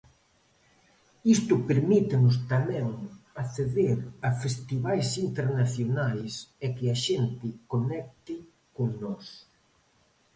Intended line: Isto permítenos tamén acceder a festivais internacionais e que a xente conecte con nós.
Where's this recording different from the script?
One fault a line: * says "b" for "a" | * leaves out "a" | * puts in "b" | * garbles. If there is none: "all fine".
all fine